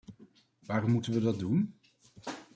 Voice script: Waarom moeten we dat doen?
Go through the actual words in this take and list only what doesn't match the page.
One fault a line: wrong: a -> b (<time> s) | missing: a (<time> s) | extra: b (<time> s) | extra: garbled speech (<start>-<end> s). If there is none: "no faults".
no faults